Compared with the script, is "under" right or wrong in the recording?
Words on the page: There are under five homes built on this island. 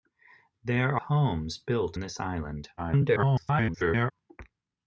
wrong